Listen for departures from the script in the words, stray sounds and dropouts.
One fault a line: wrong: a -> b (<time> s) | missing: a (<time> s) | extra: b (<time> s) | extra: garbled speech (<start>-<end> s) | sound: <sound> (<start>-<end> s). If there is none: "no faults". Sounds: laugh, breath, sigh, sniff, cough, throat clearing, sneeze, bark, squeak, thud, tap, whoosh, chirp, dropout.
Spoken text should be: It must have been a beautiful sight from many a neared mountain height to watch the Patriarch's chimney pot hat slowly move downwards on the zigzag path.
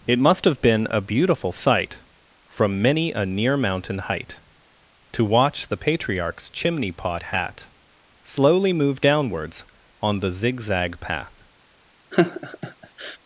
wrong: neared -> near (3.2 s)
sound: laugh (12.1-13.2 s)